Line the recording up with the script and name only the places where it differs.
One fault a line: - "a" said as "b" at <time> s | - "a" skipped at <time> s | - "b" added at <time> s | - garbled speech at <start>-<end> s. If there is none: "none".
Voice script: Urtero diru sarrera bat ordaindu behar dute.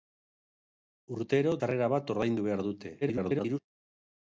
- "diru" skipped at 1.5 s
- garbled speech at 3.0-3.6 s